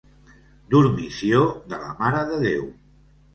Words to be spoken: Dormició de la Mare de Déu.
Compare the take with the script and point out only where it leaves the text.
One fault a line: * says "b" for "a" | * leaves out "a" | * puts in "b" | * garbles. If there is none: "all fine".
all fine